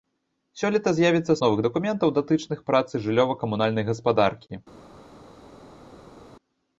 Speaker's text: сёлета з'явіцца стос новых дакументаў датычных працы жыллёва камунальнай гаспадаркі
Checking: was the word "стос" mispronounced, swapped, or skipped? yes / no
yes